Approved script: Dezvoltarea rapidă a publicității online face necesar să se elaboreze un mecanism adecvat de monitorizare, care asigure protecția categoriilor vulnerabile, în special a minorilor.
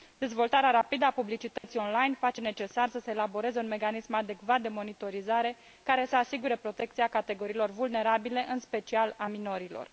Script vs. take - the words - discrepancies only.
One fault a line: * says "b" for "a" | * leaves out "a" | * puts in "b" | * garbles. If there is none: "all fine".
* puts in "să"